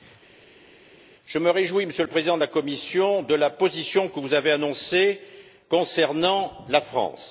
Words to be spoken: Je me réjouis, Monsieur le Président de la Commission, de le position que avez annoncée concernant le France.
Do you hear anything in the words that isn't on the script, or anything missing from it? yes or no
yes